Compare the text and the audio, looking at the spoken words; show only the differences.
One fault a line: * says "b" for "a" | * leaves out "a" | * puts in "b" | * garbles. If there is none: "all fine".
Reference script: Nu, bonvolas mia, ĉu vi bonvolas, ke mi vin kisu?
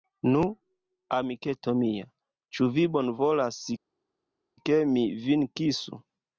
* says "amiketo" for "bonvolas"